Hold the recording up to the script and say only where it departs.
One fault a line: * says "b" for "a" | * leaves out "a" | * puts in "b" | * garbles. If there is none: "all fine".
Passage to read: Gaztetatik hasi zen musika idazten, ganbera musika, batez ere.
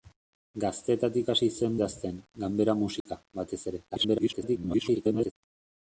* leaves out "musika"
* garbles